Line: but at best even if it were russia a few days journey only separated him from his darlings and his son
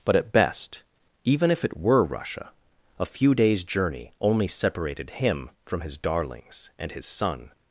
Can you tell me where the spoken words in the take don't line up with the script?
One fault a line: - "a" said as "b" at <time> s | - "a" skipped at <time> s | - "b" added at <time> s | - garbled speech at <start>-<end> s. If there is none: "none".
none